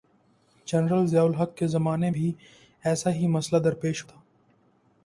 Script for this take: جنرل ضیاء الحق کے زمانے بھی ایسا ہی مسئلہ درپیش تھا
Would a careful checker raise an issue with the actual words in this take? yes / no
no